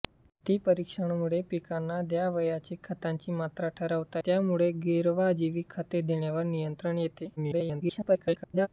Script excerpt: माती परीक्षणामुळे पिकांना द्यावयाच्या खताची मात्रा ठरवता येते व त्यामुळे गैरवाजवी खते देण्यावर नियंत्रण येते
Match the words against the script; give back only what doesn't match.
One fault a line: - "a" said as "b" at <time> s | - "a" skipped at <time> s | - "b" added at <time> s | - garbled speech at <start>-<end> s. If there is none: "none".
- "येते व" skipped at 4.2 s
- garbled speech at 7.4-8.7 s